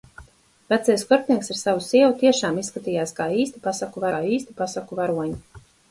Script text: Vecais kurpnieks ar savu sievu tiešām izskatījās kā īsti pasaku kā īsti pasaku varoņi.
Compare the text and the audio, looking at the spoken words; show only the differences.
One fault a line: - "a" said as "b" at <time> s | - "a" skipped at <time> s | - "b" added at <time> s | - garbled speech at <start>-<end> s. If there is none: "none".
none